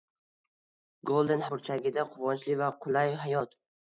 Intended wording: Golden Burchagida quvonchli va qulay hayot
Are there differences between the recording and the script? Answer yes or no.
no